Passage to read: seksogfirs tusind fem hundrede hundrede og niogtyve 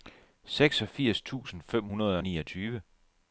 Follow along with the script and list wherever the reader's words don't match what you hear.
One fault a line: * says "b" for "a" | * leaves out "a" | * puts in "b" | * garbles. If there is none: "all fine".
* leaves out "hundrede"